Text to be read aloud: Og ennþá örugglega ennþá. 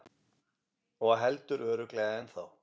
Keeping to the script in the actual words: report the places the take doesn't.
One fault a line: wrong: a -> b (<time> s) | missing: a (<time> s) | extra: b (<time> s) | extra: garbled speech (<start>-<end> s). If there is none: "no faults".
wrong: ennþá -> heldur (1.2 s)